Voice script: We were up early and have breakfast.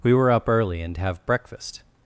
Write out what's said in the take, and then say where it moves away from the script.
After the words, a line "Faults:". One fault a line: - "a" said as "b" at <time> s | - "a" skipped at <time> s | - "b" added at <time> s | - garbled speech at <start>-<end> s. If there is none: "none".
We were up early and have breakfast.
Faults:
none